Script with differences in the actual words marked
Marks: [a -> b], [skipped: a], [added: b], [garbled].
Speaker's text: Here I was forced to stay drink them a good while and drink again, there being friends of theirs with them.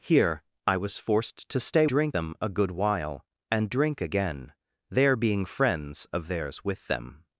Here I was forced to stay drink them a good while and drink again, there being friends of theirs with them.